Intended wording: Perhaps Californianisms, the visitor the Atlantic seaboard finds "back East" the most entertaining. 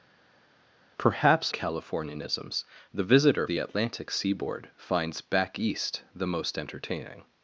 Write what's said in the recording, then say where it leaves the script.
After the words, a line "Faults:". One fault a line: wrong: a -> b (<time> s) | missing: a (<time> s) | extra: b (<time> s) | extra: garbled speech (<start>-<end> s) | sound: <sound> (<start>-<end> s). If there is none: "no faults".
Perhaps Californianisms, the visitor the Atlantic seaboard finds "back East" the most entertaining.
Faults:
no faults